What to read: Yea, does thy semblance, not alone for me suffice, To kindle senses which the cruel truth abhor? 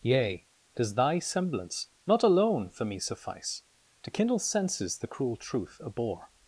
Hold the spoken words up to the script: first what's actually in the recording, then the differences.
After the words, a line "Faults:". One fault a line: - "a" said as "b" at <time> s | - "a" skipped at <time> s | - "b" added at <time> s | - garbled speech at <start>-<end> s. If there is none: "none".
Yea, does thy semblance, not alone for me suffice, To kindle senses the cruel truth abhor?
Faults:
- "which" skipped at 5.0 s